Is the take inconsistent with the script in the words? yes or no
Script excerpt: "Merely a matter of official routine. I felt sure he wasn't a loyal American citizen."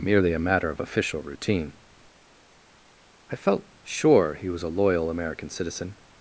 yes